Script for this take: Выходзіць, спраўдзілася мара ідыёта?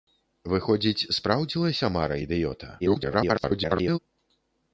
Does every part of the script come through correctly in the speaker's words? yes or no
no